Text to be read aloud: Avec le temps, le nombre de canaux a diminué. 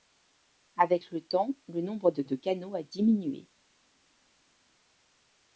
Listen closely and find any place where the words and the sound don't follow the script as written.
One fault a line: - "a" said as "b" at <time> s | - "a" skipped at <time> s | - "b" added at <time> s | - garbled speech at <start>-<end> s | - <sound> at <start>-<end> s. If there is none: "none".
- "de" added at 2.2 s